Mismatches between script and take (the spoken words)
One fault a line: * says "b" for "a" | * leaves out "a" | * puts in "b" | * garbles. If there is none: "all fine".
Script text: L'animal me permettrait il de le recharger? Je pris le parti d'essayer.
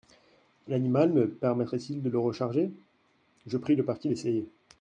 all fine